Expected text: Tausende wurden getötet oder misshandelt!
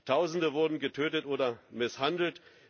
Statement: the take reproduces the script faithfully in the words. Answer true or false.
true